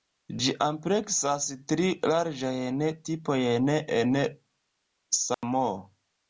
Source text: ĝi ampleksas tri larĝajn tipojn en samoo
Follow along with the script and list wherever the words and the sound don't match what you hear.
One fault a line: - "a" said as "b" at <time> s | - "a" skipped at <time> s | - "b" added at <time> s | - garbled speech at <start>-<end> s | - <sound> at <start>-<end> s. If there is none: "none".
- dropout at 5.3-5.4 s